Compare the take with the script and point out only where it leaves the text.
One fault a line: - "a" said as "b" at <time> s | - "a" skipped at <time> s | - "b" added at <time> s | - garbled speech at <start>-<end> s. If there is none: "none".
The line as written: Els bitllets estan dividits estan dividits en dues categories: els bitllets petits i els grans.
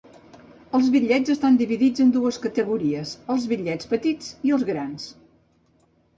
- "estan dividits" skipped at 2.0 s